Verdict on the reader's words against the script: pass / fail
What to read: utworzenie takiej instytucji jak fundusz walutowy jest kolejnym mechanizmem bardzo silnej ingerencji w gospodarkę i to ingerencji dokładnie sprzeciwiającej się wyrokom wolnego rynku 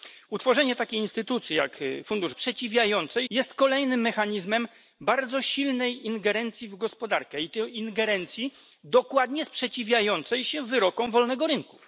fail